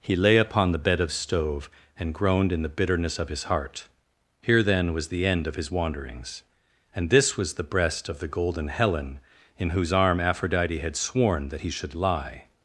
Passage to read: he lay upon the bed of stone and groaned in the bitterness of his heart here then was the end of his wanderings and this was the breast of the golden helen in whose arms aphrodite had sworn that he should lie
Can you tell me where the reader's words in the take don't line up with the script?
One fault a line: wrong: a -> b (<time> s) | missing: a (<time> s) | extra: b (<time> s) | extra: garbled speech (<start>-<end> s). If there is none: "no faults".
wrong: stone -> stove (1.1 s)
wrong: arms -> arm (9.9 s)